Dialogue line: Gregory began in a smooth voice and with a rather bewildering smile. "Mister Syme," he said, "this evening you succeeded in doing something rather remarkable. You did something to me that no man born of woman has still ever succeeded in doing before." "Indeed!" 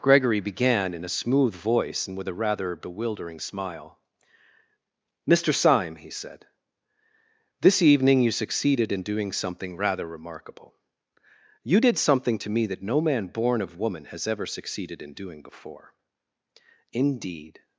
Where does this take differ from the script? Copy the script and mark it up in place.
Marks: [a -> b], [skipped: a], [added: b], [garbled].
Gregory began in a smooth voice and with a rather bewildering smile. "Mister Syme," he said, "this evening you succeeded in doing something rather remarkable. You did something to me that no man born of woman has [skipped: still] ever succeeded in doing before." "Indeed!"